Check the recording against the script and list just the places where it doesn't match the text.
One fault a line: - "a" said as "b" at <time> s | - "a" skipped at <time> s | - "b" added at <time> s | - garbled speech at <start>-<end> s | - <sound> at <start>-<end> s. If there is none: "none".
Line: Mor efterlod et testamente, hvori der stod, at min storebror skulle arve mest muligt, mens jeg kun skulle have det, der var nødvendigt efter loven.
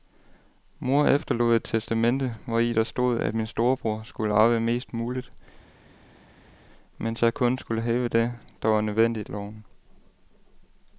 - "efter" skipped at 9.3 s